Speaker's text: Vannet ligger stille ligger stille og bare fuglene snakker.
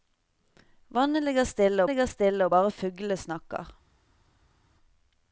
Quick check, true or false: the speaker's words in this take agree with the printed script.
true